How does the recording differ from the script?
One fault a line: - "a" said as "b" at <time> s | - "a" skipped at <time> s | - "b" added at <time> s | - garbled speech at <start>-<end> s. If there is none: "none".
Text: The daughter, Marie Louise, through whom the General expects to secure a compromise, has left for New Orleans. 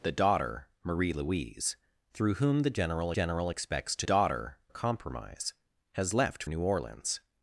- "General" added at 3.1 s
- "secure" said as "daughter" at 4.0 s
- "for" skipped at 6.4 s